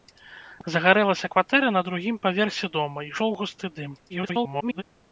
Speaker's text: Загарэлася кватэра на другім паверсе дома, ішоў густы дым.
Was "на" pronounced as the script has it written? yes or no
yes